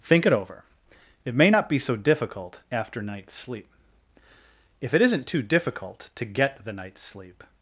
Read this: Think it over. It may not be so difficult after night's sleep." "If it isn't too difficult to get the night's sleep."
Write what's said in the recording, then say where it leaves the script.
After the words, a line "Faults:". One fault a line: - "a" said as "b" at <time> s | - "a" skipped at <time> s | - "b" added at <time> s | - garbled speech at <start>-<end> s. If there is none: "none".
Think it over. It may not be so difficult after night's sleep." "If it isn't too difficult to get the night's sleep."
Faults:
none